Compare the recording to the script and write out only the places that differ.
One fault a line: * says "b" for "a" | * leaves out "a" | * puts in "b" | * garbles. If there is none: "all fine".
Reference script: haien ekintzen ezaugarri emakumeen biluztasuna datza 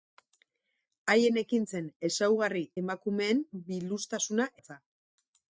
all fine